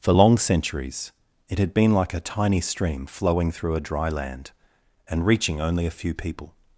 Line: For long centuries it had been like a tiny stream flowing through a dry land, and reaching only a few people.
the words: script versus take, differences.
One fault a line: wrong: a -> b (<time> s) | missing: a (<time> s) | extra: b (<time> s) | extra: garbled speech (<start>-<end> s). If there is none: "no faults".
no faults